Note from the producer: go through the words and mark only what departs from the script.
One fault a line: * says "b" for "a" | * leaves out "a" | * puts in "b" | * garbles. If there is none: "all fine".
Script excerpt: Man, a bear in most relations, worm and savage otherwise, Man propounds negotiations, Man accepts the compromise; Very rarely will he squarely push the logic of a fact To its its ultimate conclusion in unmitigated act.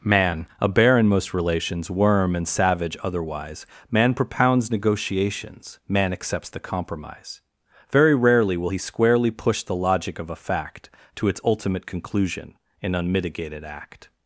* leaves out "its"